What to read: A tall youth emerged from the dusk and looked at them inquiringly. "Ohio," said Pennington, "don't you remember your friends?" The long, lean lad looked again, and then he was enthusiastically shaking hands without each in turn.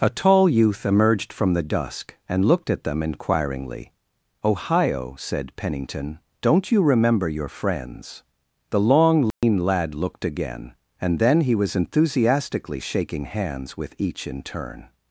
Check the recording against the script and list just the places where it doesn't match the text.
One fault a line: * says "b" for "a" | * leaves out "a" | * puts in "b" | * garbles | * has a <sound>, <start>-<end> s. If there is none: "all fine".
* has a dropout, 9.3-9.4 s
* says "with" for "without"